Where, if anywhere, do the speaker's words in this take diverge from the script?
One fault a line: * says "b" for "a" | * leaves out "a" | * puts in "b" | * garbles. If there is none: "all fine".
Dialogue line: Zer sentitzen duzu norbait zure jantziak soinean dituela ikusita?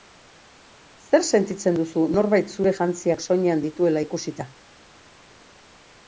all fine